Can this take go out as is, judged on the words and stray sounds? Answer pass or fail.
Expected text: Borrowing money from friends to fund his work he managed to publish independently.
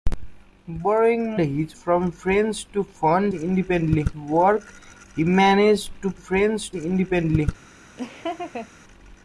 fail